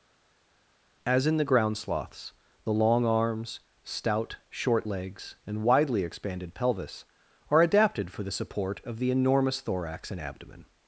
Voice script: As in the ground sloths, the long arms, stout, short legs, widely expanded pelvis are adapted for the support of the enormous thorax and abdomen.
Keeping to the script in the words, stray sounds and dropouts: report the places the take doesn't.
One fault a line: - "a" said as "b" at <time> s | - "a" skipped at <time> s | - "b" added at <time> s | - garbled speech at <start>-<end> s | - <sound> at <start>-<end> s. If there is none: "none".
- "and" added at 5.5 s